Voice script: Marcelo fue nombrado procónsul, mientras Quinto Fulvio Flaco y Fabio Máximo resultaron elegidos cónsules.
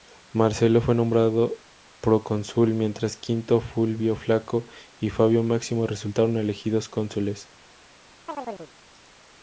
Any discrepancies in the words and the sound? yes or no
yes